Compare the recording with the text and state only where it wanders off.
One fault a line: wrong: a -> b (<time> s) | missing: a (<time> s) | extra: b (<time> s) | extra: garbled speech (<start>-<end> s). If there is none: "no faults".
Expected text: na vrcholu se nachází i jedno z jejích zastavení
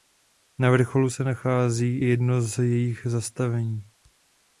no faults